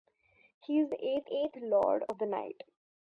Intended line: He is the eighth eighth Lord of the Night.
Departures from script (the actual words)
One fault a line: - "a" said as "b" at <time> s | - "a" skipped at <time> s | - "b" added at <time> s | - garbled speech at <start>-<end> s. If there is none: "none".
none